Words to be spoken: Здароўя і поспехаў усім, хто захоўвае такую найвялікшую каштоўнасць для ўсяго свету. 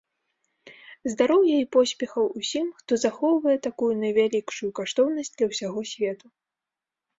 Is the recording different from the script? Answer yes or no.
no